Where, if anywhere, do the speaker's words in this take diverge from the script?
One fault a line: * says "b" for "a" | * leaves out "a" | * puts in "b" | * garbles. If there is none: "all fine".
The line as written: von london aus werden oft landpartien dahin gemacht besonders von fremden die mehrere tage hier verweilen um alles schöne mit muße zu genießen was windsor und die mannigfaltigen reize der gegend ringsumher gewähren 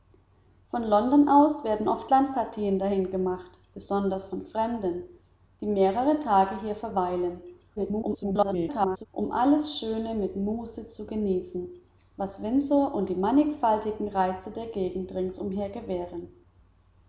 * garbles